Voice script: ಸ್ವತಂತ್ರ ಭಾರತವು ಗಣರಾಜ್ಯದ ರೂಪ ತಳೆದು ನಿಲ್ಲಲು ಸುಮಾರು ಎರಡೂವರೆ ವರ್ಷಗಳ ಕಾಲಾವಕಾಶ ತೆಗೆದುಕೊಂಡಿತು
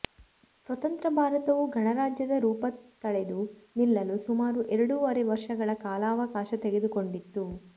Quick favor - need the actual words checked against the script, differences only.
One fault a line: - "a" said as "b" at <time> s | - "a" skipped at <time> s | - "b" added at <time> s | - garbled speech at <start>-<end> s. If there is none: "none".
none